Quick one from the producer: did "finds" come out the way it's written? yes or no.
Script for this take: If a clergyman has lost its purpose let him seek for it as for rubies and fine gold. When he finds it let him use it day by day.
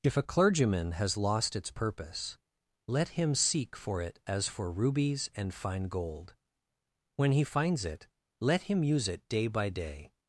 yes